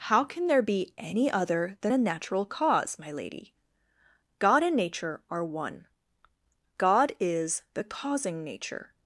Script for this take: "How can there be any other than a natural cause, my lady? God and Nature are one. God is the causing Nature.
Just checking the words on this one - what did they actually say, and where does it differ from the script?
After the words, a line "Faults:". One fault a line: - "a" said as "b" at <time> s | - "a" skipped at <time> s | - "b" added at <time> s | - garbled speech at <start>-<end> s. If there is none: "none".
"How can there be any other than a natural cause, my lady? God and Nature are one. God is the causing Nature.
Faults:
none